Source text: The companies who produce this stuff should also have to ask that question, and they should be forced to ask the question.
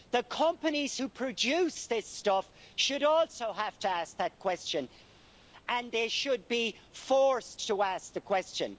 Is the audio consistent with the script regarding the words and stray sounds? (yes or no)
yes